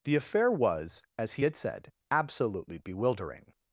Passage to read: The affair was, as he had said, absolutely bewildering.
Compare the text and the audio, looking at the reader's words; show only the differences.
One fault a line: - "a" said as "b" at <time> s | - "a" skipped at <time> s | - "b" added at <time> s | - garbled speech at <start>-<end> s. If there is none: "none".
none